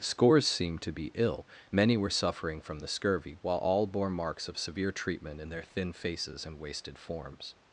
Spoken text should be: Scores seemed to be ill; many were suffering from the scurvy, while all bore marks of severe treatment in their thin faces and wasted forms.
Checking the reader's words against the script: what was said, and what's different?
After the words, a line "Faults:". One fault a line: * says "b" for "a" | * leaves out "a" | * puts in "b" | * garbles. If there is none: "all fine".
Scores seemed to be ill; many were suffering from the scurvy, while all bore marks of severe treatment in their thin faces and wasted forms.
Faults:
all fine